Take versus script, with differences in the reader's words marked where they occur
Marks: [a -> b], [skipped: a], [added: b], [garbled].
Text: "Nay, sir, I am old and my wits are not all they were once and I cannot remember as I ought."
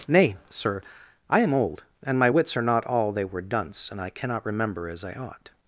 "Nay, sir, I am old and my wits are not all they were [once -> dunce] and I cannot remember as I ought."